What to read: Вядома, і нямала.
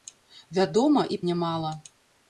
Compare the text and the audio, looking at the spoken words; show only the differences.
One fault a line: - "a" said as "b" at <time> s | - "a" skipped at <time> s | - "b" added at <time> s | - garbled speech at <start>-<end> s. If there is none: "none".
none